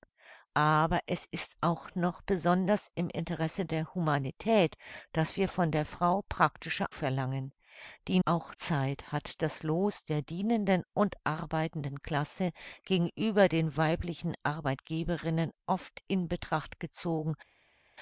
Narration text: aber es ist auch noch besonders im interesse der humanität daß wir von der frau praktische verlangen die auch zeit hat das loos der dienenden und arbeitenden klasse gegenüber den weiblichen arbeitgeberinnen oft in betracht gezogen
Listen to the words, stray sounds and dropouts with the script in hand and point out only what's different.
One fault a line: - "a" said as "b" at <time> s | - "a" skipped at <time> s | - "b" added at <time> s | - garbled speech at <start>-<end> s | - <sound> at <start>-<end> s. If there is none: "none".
none